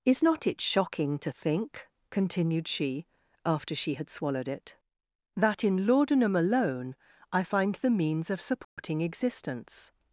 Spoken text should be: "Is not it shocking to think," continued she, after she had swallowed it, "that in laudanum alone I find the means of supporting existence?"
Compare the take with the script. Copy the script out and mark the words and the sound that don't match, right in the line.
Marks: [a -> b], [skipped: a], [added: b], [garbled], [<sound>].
"Is not it shocking to think," continued she, after she had swallowed it, "that in laudanum alone I find the means of supporting [dropout] existence?"